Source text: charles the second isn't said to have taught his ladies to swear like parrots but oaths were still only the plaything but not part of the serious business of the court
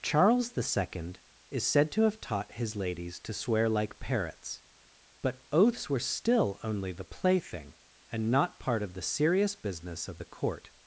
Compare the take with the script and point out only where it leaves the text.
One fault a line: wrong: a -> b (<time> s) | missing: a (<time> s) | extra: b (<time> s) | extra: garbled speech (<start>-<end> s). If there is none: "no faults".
wrong: isn't -> is (1.5 s)
wrong: but -> and (8.1 s)